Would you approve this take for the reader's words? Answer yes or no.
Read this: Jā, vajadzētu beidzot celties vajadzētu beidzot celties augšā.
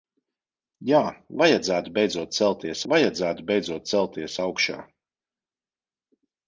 yes